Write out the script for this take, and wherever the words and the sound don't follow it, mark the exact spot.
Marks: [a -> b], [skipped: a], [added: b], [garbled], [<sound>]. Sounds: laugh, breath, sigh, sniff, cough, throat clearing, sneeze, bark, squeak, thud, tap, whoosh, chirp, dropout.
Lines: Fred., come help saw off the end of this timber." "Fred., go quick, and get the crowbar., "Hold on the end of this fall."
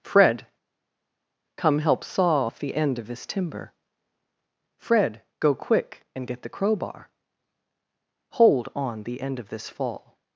Fred., come help saw off the end of this timber." "Fred., go quick, and get the crowbar., "Hold on the end of this fall."